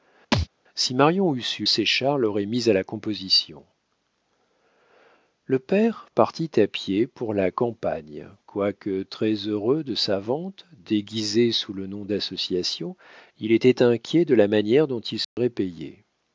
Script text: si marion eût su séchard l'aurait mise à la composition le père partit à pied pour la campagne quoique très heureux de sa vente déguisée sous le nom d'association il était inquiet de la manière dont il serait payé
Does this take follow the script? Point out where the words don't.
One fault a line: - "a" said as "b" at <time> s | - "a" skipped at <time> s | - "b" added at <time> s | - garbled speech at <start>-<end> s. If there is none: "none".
none